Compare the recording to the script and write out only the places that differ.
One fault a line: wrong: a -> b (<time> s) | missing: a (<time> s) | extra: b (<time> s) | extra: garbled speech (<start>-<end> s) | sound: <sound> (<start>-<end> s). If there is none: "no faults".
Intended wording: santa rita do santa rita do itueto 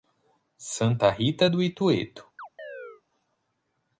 missing: santa rita do (1.6 s)
sound: chirp (2.4-3.0 s)